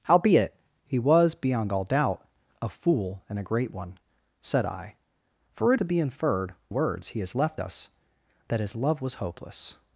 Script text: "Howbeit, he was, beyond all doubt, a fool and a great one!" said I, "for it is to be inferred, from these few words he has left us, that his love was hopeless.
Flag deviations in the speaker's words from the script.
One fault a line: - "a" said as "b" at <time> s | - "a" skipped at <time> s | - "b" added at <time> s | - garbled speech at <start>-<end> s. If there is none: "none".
- "is" skipped at 5.8 s
- "from these few" skipped at 6.5 s